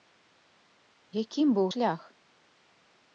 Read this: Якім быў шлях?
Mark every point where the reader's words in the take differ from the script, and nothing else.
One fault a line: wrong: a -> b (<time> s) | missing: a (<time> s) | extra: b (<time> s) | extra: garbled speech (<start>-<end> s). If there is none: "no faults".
no faults